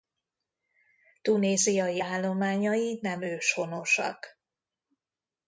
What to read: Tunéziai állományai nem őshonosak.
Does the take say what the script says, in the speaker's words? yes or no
yes